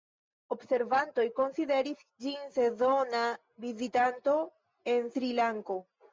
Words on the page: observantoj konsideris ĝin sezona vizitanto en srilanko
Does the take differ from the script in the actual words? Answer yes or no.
no